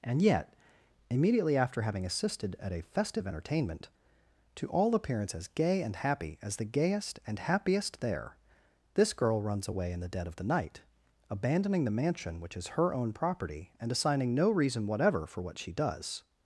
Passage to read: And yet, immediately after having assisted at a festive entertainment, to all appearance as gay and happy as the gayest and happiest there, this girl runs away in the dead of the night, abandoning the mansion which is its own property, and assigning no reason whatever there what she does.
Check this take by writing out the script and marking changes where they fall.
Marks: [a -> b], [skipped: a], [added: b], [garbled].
And yet, immediately after having assisted at a festive entertainment, to all appearance as gay and happy as the gayest and happiest there, this girl runs away in the dead of the night, abandoning the mansion which is [its -> her] own property, and assigning no reason whatever [there -> for] what she does.